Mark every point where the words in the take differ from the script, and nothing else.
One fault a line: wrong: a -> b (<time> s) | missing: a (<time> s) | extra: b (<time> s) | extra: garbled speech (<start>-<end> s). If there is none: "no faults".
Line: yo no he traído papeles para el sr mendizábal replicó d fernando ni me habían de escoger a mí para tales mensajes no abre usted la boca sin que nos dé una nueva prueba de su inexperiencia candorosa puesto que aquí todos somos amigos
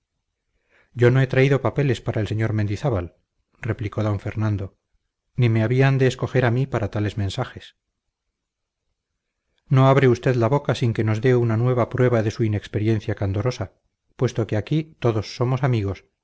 no faults